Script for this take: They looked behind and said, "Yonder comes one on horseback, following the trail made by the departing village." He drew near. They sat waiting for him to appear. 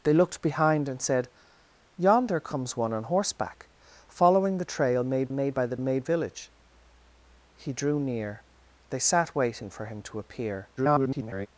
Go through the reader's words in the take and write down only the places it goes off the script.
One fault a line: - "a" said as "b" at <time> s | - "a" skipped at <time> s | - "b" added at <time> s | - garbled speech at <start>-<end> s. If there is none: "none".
- "made" added at 5.3 s
- "departing" said as "made" at 5.8 s
- garbled speech at 10.8-11.5 s